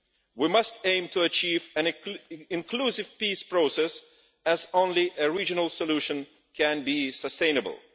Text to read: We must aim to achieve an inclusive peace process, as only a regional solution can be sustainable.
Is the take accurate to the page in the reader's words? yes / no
yes